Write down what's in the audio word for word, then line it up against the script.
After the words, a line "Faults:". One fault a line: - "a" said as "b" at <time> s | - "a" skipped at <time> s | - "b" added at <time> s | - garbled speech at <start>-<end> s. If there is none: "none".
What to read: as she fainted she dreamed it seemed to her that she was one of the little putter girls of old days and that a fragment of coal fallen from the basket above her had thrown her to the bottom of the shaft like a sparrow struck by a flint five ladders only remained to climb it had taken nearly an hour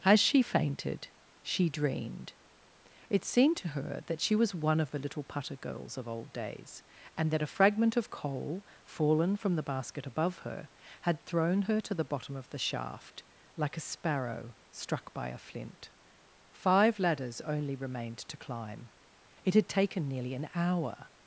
as she fainted she dreamed it seemed to her that she was one of the little putter girls of old days and that a fragment of coal fallen from the basket above her had thrown her to the bottom of the shaft like a sparrow struck by a flint five ladders only remained to climb it had taken nearly an hour
Faults:
none